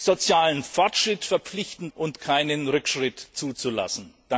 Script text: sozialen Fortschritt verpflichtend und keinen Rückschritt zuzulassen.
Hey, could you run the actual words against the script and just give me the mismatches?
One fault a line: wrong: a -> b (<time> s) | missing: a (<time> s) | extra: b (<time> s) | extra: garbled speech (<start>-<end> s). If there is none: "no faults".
no faults